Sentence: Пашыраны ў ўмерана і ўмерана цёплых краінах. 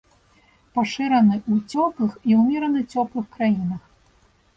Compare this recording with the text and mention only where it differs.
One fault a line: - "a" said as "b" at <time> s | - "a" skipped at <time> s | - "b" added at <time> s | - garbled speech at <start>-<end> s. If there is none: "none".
- "ўмерана" said as "цёплых" at 1.7 s